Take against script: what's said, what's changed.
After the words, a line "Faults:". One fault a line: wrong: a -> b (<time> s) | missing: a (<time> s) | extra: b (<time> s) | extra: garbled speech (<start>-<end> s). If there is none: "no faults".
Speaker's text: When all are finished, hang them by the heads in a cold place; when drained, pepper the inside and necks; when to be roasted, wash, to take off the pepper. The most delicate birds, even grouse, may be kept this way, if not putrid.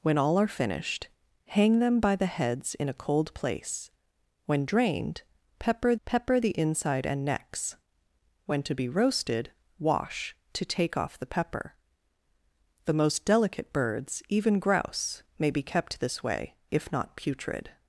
When all are finished, hang them by the heads in a cold place; when drained, pepper pepper the inside and necks; when to be roasted, wash, to take off the pepper. The most delicate birds, even grouse, may be kept this way, if not putrid.
Faults:
extra: pepper (6.1 s)